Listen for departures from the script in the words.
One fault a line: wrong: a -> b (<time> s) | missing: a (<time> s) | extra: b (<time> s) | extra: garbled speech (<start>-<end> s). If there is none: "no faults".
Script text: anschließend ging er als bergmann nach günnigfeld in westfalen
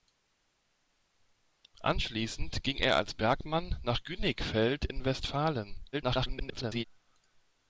extra: garbled speech (5.9-6.8 s)